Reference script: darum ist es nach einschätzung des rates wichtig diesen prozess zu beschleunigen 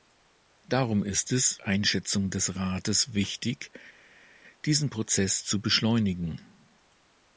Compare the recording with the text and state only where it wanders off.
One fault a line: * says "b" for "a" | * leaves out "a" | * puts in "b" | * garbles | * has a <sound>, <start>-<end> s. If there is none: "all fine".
* leaves out "nach"